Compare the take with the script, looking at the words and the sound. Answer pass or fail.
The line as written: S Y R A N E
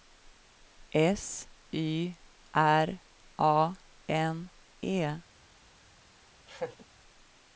fail